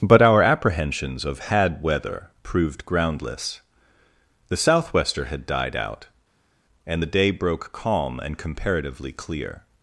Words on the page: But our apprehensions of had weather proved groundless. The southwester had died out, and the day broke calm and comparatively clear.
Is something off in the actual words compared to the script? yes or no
no